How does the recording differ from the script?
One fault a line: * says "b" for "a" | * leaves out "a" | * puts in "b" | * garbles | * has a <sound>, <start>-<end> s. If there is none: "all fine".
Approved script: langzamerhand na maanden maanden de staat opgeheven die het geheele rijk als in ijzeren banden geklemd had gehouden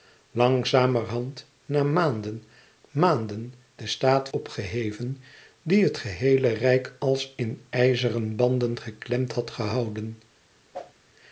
* has a whoosh, 10.7-10.9 s